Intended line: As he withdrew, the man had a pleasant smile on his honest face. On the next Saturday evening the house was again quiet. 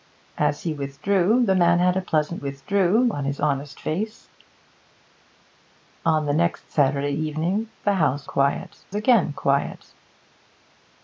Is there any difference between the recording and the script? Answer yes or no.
yes